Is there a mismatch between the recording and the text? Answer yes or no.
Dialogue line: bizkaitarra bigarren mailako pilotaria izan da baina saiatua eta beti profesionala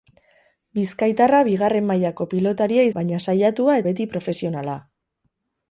yes